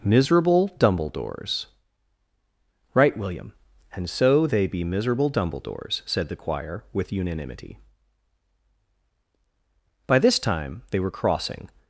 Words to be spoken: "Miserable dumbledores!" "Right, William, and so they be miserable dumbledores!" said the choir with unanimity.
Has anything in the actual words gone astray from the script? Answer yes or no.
yes